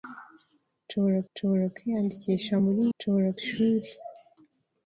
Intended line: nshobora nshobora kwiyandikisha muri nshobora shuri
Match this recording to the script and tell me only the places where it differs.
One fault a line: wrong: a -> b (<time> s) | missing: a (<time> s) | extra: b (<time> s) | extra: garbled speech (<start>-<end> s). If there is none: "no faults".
no faults